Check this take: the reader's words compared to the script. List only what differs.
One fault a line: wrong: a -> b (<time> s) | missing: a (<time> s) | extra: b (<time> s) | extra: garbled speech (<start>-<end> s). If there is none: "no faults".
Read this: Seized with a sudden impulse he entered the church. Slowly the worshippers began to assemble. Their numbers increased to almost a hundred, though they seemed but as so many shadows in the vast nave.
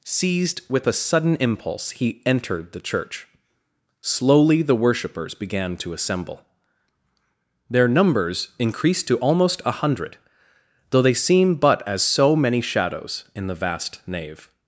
wrong: seemed -> seem (11.1 s)